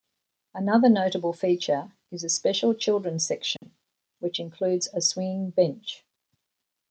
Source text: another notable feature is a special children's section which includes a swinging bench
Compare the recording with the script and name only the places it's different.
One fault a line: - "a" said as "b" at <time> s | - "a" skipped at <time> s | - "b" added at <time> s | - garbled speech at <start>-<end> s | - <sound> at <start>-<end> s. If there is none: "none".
- dropout at 3.6-3.6 s